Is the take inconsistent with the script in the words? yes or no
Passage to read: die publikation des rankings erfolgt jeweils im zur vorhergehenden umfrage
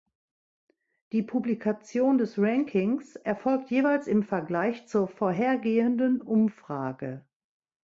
yes